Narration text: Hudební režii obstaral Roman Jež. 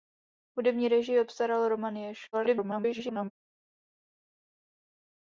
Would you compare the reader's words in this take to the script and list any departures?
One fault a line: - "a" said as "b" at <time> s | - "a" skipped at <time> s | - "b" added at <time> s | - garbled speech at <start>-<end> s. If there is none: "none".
- garbled speech at 2.3-3.3 s